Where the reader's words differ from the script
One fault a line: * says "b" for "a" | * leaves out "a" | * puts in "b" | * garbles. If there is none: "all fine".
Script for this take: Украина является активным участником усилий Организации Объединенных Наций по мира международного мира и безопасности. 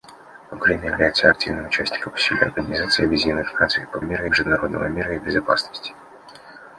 all fine